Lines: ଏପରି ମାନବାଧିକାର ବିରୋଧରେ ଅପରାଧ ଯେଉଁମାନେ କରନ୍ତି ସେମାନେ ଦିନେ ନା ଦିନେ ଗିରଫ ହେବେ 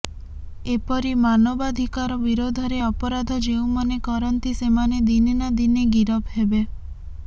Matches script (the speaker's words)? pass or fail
pass